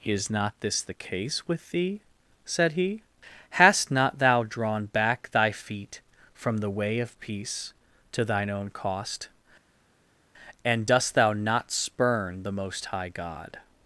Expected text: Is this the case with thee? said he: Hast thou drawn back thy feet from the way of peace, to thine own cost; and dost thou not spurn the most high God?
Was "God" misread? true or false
false